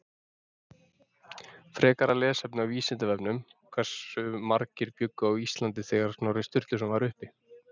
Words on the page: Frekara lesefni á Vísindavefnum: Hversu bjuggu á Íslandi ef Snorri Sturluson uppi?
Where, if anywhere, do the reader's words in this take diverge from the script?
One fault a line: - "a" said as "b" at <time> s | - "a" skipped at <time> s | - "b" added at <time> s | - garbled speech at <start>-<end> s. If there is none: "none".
- "margir" added at 4.5 s
- "ef" said as "þegar" at 5.9 s
- "var" added at 7.0 s